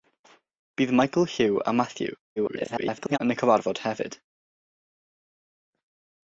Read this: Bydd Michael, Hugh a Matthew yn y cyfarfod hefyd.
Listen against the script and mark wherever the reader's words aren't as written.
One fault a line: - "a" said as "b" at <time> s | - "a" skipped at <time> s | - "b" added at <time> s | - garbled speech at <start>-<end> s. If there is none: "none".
- garbled speech at 2.4-3.2 s